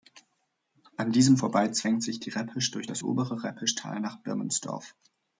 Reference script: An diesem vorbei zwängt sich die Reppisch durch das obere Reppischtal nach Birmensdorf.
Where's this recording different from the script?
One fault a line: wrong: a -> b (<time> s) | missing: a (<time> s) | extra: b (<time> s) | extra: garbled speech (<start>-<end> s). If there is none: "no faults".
no faults